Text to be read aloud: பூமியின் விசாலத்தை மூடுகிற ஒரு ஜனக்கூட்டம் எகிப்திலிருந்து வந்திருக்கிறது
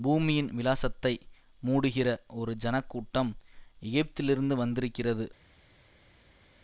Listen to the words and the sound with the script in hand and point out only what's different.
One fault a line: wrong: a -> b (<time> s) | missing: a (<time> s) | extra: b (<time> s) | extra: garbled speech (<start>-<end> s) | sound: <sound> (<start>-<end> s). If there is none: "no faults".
no faults